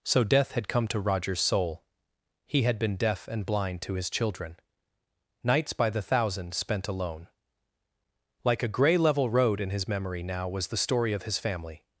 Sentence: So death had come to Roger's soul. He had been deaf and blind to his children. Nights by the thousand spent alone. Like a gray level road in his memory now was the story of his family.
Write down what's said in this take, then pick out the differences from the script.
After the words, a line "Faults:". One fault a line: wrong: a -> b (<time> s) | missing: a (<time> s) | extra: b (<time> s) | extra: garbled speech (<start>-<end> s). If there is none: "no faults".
So death had come to Roger's soul. He had been deaf and blind to his children. Nights by the thousand spent alone. Like a gray level road in his memory now was the story of his family.
Faults:
no faults